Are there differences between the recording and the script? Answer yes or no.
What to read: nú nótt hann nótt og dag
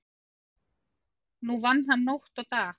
yes